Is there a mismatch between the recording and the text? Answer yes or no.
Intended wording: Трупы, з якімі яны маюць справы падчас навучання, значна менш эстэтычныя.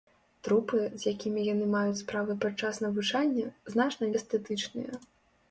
yes